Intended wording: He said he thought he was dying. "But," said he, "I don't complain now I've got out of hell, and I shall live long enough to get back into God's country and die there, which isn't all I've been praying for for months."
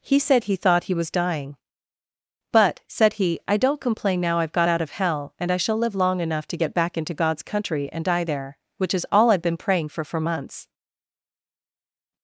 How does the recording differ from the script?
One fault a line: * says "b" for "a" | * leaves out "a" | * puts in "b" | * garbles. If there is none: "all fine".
* says "is" for "isn't"